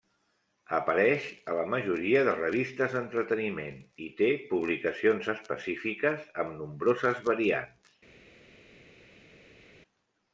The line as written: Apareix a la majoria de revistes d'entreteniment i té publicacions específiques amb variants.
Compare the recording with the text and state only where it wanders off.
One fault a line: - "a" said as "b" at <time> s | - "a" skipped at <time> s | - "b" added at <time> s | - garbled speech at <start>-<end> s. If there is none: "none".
- "nombroses" added at 6.6 s